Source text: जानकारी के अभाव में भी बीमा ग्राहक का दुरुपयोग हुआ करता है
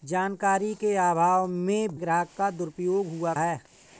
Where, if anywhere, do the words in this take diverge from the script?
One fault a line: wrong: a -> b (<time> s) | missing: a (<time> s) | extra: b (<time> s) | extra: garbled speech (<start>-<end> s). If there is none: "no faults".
missing: भी बीमा (1.9 s)
missing: करता (3.3 s)